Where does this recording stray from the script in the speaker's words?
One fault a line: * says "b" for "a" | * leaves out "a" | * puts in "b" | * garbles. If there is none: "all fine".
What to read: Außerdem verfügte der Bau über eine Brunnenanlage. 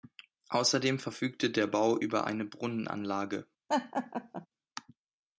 all fine